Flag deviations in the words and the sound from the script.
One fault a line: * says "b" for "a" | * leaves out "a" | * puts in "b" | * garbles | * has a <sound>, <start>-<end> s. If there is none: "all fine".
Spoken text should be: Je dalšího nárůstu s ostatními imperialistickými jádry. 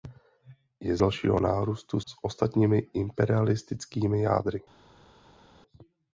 all fine